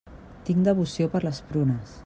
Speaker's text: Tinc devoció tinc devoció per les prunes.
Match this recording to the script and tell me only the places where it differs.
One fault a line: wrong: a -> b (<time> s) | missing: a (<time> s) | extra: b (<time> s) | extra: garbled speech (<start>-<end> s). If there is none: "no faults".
missing: tinc devoció (1.1 s)